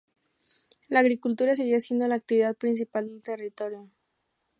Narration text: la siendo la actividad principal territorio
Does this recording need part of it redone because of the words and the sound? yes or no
yes